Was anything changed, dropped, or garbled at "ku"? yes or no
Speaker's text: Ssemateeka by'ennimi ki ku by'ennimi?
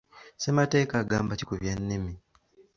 no